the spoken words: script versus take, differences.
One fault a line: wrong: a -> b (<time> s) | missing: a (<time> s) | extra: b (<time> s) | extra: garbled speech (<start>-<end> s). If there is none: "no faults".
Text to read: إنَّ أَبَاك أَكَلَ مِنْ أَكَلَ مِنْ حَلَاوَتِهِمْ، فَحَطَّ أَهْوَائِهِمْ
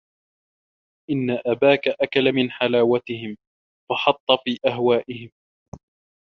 missing: أَكَلَ مِنْ (2.5 s)
extra: فِي (4.4 s)